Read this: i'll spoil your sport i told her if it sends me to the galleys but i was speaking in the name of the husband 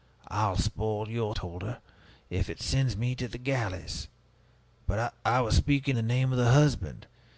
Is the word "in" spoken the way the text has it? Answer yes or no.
no